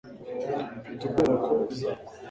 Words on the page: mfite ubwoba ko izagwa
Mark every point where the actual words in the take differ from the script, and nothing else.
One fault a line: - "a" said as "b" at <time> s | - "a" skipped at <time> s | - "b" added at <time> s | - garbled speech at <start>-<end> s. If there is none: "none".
none